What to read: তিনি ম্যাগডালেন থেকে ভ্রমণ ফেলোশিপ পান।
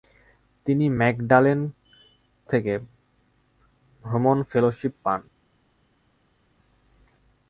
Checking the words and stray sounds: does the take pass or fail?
pass